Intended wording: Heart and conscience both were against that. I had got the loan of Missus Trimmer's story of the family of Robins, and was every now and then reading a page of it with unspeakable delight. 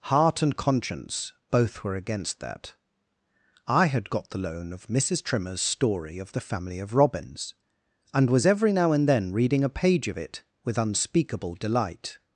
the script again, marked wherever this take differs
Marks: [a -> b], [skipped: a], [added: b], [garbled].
Heart and conscience both were against that. I had got the loan of Missus Trimmer's story of the family of Robins, and was every now and then reading a page of it with unspeakable delight.